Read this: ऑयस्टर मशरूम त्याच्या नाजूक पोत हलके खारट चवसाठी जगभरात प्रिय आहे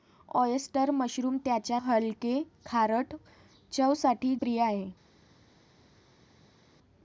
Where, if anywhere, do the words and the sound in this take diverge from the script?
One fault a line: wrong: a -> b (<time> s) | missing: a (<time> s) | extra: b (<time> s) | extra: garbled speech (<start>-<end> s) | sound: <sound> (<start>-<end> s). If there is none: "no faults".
missing: नाजूक पोत (1.8 s)
missing: जगभरात (4.3 s)